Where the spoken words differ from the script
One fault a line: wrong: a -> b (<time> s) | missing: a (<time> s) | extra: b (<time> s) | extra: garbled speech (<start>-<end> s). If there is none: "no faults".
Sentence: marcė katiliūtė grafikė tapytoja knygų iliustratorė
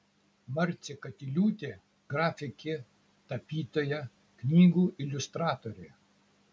no faults